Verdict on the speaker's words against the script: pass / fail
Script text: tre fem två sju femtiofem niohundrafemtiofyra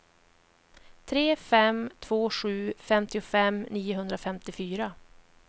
pass